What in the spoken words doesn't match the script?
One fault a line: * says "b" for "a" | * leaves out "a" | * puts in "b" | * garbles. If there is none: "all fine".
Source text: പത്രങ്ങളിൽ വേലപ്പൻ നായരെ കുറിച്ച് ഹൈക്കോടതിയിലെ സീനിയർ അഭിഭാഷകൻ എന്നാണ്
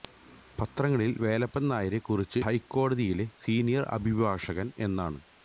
all fine